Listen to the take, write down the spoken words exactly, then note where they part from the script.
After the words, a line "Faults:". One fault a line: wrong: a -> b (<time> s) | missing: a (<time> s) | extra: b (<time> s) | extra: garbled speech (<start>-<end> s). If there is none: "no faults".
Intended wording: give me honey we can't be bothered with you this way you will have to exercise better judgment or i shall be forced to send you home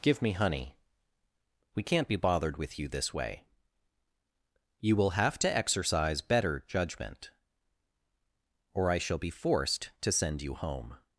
give me honey we can't be bothered with you this way you will have to exercise better judgment or i shall be forced to send you home
Faults:
no faults